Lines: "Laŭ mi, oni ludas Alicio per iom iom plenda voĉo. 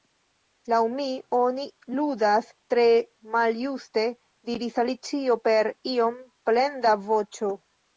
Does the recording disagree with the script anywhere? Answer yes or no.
yes